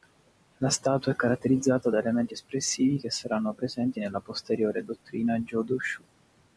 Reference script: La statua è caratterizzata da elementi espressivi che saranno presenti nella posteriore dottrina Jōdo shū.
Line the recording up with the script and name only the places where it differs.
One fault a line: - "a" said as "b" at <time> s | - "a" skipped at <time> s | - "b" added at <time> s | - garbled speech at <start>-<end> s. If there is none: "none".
none